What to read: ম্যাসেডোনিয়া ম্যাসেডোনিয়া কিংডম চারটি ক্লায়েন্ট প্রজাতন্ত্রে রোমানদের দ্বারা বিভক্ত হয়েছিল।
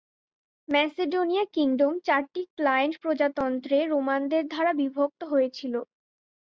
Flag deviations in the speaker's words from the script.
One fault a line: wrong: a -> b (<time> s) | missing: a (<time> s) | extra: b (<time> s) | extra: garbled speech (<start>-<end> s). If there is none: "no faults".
missing: ম্যাসেডোনিয়া (1.4 s)